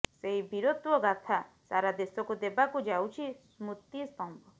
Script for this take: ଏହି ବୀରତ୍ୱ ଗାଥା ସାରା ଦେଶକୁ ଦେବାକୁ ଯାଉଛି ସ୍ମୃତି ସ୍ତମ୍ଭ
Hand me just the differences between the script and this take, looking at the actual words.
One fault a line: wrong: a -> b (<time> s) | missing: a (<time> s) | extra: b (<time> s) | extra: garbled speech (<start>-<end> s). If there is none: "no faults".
wrong: ଏହି -> ସେହି (0.1 s)